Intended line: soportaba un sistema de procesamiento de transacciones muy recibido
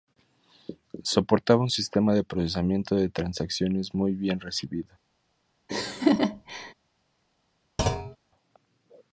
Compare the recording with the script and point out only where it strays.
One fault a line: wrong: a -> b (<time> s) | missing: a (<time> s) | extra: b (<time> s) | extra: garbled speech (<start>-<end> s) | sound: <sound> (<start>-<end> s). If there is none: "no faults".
extra: bien (4.2 s)
sound: laugh (5.7-6.7 s)
sound: thud (7.8-8.2 s)